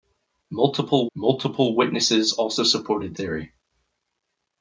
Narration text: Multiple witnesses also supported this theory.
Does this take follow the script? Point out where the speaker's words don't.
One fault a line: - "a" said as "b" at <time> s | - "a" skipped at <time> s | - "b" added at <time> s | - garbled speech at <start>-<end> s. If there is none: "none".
- "multiple" added at 1.1 s
- "this" skipped at 3.1 s